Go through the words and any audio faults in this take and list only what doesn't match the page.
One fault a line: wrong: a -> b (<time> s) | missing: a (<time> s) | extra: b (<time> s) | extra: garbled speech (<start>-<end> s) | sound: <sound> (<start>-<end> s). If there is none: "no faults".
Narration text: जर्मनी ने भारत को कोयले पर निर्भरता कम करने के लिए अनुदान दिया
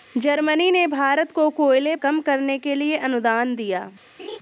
missing: पर निर्भरता (1.9 s)
sound: laugh (4.2-4.4 s)